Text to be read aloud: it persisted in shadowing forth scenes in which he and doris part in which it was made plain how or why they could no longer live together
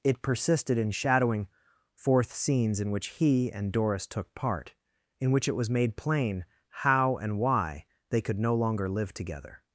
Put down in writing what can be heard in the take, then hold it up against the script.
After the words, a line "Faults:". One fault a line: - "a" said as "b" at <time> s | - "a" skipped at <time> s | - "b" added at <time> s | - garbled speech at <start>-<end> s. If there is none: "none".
it persisted in shadowing forth scenes in which he and doris took part in which it was made plain how and why they could no longer live together
Faults:
- "took" added at 4.1 s
- "or" said as "and" at 7.2 s